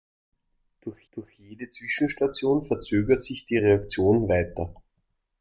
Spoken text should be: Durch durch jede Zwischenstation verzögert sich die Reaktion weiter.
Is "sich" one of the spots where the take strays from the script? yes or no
no